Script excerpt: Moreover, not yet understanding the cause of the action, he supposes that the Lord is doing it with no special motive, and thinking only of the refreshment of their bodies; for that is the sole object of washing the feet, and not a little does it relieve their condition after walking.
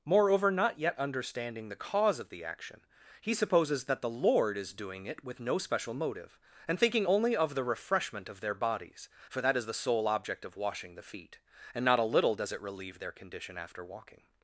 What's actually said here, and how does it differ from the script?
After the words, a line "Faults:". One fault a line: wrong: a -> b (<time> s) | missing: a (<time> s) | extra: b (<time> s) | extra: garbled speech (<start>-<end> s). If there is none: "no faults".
Moreover, not yet understanding the cause of the action, he supposes that the Lord is doing it with no special motive, and thinking only of the refreshment of their bodies; for that is the sole object of washing the feet, and not a little does it relieve their condition after walking.
Faults:
no faults